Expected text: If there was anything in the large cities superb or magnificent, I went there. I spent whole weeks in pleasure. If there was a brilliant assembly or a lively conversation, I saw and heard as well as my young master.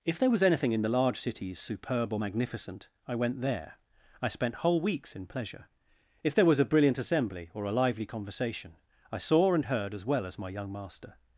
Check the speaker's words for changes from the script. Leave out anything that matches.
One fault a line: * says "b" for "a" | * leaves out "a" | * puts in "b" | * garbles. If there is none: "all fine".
all fine